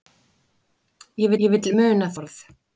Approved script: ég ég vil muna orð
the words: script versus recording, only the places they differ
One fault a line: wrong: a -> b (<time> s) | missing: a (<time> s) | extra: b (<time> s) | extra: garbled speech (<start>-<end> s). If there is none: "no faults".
no faults